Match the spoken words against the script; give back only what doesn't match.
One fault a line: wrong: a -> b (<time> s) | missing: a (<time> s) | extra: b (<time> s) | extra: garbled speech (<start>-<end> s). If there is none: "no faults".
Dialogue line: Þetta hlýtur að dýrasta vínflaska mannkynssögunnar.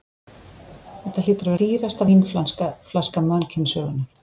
no faults